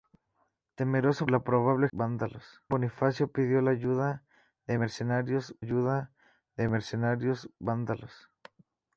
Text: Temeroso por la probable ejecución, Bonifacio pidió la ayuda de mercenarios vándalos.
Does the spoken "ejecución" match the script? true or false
false